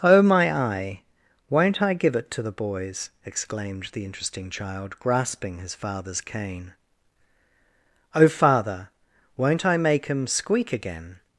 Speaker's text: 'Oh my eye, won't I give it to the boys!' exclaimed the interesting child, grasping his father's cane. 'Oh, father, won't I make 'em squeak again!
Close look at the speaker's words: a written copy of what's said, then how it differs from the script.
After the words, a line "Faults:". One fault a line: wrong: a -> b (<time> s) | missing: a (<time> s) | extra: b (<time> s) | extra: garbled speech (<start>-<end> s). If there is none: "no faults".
'Oh my eye, won't I give it to the boys!' exclaimed the interesting child, grasping his father's cane. 'Oh, father, won't I make 'em squeak again!
Faults:
no faults